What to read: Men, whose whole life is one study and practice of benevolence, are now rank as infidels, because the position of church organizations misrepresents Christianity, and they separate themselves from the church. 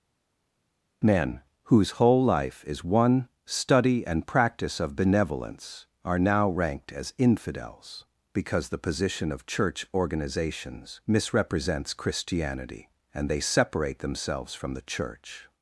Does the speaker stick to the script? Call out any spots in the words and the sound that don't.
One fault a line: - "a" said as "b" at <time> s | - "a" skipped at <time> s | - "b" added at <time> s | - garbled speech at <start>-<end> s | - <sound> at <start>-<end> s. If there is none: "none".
- "rank" said as "ranked" at 6.5 s